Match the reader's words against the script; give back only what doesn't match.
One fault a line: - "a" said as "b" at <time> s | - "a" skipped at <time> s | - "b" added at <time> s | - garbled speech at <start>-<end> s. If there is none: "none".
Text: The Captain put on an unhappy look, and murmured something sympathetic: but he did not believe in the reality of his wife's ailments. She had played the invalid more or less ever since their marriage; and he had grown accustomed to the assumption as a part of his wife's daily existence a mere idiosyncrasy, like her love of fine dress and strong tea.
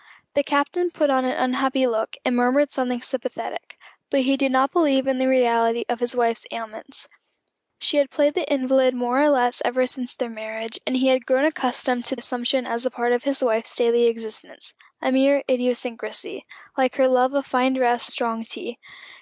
- "the" skipped at 12.2 s
- "and" skipped at 18.1 s